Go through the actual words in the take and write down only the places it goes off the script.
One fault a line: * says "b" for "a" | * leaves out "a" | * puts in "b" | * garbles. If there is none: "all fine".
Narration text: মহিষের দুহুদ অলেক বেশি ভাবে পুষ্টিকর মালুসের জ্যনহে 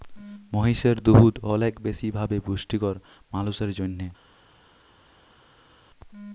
all fine